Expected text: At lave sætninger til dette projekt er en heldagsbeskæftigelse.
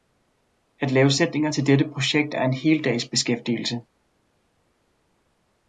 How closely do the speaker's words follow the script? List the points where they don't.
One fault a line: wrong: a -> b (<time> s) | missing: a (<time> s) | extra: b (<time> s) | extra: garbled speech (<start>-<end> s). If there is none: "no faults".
no faults